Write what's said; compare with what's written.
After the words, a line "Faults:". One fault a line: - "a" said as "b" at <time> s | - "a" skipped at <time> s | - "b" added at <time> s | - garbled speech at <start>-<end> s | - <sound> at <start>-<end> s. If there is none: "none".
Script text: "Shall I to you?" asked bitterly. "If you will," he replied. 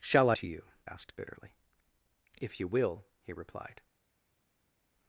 "Shall I to you?" asked bitterly. "If you will," he replied.
Faults:
none